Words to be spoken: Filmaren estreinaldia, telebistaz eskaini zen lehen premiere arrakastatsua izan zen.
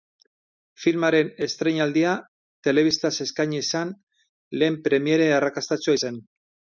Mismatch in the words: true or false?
true